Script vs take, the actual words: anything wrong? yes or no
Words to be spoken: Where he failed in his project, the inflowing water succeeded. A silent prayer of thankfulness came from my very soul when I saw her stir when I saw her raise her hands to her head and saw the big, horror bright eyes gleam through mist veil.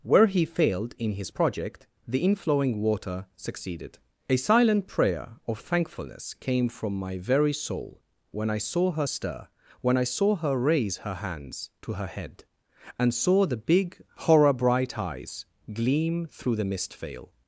yes